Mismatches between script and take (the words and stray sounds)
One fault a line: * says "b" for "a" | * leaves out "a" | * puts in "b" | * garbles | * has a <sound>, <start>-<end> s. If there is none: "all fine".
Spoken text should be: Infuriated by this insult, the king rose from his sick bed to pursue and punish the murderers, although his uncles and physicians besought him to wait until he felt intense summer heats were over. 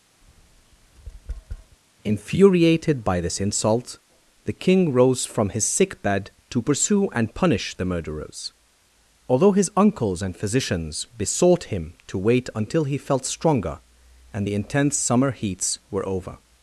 * has a tap, 0.2-1.8 s
* puts in "stronger and the"